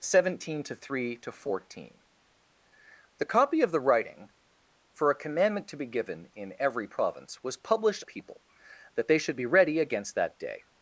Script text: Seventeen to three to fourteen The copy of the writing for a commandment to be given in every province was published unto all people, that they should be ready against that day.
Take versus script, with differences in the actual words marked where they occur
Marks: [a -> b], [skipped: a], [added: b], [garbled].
Seventeen to three to fourteen The copy of the writing for a commandment to be given in every province was published [skipped: unto all] people, that they should be ready against that day.